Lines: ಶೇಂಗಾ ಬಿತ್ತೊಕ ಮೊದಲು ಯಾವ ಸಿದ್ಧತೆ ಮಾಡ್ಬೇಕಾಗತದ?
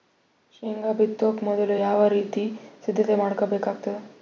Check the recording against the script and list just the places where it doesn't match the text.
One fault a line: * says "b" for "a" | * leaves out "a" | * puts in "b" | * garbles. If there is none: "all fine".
* puts in "ರೀತಿ"